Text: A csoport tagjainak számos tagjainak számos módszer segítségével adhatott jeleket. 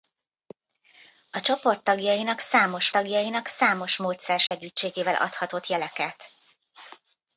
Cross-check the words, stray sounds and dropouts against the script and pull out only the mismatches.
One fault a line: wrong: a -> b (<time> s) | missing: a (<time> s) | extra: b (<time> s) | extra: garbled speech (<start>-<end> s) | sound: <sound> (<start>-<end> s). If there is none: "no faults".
sound: dropout (4.5-4.5 s)